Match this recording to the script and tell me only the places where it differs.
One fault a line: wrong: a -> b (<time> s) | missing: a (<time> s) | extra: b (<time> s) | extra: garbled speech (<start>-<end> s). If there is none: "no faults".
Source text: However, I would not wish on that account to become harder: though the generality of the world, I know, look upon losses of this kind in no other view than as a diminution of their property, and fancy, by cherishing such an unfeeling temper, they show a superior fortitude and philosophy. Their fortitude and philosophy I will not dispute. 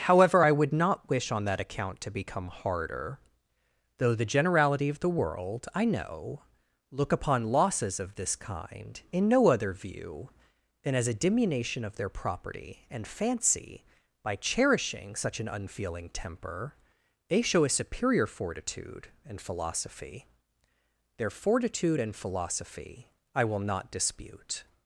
no faults